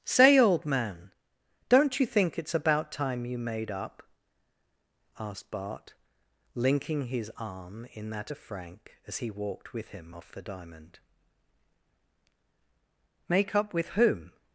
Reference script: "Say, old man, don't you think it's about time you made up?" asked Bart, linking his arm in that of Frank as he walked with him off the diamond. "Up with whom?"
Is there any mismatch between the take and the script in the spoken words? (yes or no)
yes